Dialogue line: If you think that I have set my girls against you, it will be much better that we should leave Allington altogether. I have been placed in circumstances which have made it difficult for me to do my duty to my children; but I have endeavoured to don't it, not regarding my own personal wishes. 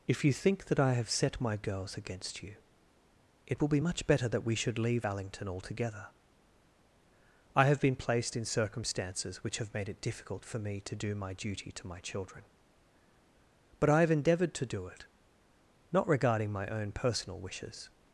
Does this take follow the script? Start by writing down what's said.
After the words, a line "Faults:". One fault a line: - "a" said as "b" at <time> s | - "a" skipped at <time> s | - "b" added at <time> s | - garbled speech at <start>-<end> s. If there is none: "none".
If you think that I have set my girls against you, it will be much better that we should leave Allington altogether. I have been placed in circumstances which have made it difficult for me to do my duty to my children; but I have endeavoured to do it, not regarding my own personal wishes.
Faults:
- "don't" said as "do" at 14.7 s